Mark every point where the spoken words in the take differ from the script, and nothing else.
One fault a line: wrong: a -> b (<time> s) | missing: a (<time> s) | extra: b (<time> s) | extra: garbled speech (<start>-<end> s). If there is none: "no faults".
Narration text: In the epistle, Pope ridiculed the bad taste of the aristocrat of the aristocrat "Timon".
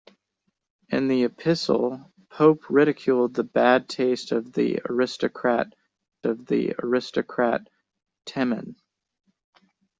no faults